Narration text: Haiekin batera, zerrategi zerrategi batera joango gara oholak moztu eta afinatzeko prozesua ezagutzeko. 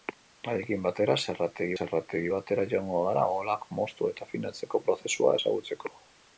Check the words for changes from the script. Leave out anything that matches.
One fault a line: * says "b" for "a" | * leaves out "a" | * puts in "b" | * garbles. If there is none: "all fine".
all fine